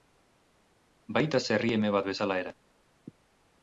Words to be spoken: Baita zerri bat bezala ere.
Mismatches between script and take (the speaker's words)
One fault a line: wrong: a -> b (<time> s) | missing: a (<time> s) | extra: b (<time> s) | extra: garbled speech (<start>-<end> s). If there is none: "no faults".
extra: eme (1.8 s)